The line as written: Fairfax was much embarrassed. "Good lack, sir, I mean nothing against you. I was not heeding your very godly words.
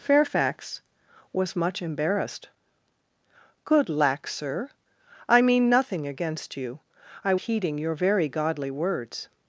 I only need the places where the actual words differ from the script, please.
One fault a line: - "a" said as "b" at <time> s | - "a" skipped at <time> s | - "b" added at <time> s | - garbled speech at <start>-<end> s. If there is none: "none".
- "was not" skipped at 7.3 s